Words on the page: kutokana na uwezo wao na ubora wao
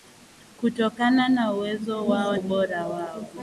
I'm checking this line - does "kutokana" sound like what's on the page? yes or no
yes